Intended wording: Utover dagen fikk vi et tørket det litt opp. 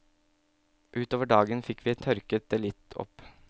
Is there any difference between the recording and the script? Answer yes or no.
no